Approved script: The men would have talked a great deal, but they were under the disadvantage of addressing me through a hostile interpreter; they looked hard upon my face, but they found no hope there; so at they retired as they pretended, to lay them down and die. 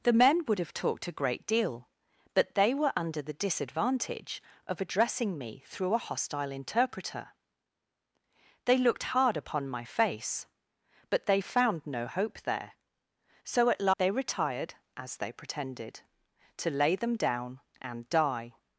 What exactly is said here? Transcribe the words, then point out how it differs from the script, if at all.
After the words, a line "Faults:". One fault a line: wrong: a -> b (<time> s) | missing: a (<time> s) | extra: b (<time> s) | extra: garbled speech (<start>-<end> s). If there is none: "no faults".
The men would have talked a great deal, but they were under the disadvantage of addressing me through a hostile interpreter; they looked hard upon my face, but they found no hope there; so at they retired as they pretended, to lay them down and die.
Faults:
no faults